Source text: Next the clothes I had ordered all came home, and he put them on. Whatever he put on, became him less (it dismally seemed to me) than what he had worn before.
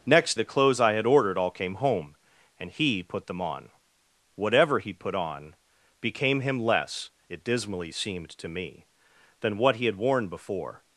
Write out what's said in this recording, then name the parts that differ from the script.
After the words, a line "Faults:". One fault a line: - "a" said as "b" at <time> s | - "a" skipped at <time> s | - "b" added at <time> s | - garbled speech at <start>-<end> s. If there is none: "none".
Next the clothes I had ordered all came home, and he put them on. Whatever he put on, became him less (it dismally seemed to me) than what he had worn before.
Faults:
none